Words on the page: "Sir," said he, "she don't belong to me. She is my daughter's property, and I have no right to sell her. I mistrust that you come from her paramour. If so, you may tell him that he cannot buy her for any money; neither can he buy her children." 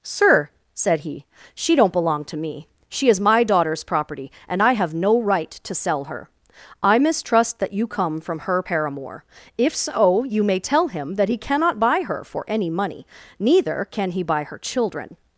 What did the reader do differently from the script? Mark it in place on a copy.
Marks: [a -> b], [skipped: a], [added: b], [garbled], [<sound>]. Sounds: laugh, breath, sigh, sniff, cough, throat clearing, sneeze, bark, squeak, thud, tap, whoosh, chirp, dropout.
"Sir," said he, "she don't belong to me. She is my daughter's property, and I have no right to sell her. I mistrust that you come from her paramour. If so, you may tell him that he cannot buy her for any money; neither can he buy her children."